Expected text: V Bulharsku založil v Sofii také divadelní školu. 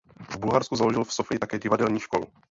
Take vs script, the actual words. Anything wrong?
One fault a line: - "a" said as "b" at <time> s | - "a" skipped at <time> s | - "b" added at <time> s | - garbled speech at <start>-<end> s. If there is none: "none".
none